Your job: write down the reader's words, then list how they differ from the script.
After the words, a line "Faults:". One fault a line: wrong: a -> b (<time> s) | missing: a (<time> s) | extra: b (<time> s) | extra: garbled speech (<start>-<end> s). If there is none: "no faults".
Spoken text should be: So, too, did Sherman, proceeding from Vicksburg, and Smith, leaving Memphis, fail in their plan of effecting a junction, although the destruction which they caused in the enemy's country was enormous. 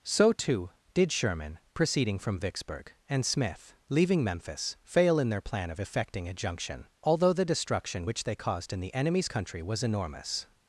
So, too, did Sherman, proceeding from Vicksburg, and Smith, leaving Memphis, fail in their plan of effecting a junction, although the destruction which they caused in the enemy's country was enormous.
Faults:
no faults